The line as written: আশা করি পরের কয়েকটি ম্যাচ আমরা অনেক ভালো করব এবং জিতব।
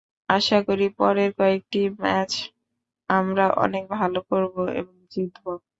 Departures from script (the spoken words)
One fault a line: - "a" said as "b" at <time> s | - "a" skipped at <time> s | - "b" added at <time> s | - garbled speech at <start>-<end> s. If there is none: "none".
none